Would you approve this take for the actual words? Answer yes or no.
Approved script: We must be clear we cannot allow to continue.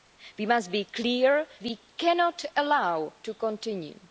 yes